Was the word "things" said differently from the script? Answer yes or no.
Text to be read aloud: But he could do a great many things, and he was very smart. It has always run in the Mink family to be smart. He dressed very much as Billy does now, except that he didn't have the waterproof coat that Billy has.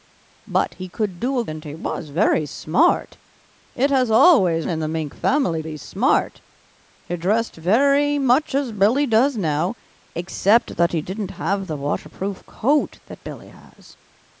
yes